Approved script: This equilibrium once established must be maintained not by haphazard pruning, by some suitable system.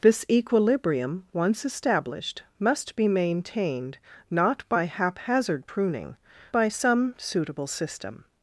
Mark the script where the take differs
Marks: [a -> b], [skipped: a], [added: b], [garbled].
This equilibrium once established must be maintained not by haphazard pruning, by some suitable system.